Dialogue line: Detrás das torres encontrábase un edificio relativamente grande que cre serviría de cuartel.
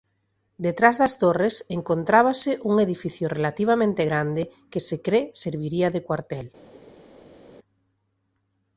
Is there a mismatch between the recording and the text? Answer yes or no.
yes